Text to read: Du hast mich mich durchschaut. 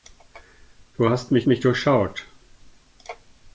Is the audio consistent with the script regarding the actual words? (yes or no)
yes